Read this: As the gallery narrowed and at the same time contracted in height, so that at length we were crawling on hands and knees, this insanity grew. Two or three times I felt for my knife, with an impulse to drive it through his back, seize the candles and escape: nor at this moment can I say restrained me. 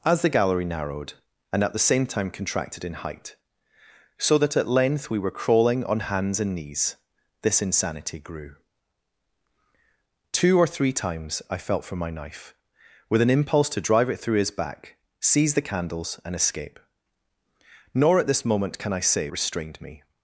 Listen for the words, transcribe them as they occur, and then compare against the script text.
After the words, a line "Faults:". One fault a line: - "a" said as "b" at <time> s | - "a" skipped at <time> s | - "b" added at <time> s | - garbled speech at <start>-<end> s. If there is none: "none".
As the gallery narrowed and at the same time contracted in height, so that at length we were crawling on hands and knees, this insanity grew. Two or three times I felt for my knife, with an impulse to drive it through his back, seize the candles and escape: nor at this moment can I say restrained me.
Faults:
none